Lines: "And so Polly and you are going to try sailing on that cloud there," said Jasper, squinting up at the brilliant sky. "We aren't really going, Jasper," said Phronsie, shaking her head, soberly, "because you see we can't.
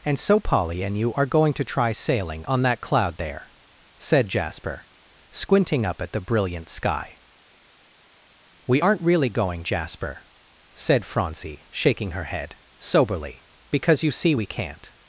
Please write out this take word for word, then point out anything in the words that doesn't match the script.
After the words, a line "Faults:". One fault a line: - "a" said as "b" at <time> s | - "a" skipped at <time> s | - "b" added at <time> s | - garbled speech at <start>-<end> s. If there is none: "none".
"And so Polly and you are going to try sailing on that cloud there," said Jasper, squinting up at the brilliant sky. "We aren't really going, Jasper," said Phronsie, shaking her head, soberly, "because you see we can't.
Faults:
none